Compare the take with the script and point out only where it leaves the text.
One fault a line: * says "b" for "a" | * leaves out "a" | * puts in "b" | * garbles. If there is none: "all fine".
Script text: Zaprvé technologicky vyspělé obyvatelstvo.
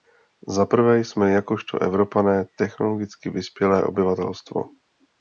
* puts in "jsme jakožto Evropané"